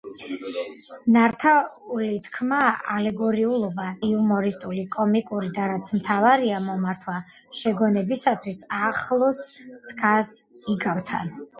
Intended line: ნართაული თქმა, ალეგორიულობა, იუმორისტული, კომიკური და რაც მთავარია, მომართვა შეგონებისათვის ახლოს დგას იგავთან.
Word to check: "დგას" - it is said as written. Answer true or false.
true